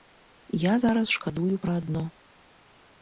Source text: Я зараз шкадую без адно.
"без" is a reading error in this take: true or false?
true